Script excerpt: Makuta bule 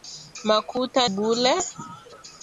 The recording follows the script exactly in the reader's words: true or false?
true